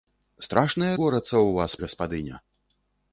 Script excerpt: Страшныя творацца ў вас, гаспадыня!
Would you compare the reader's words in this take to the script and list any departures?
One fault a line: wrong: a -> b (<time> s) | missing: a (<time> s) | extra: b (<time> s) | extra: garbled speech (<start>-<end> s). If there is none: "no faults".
no faults